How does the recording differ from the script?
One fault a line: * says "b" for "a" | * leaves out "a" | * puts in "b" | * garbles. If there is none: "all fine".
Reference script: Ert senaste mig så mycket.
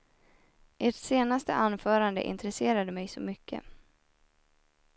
* puts in "anförande intresserade"